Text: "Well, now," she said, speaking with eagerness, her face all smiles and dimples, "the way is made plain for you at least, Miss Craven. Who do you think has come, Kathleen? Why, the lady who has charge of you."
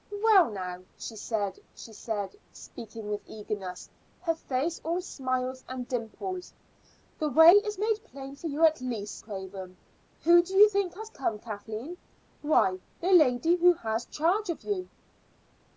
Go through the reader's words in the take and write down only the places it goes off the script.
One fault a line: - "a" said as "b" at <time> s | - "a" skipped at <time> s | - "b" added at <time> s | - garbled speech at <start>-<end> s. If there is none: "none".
- "she said" added at 1.7 s
- "Miss" skipped at 9.2 s